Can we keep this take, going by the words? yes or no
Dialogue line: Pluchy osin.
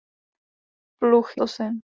yes